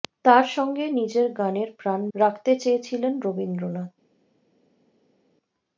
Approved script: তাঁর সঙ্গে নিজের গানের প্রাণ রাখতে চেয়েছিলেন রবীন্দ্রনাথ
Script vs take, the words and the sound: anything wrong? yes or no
no